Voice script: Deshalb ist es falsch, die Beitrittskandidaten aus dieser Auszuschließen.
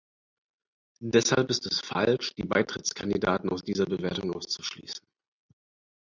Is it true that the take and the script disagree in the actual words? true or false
true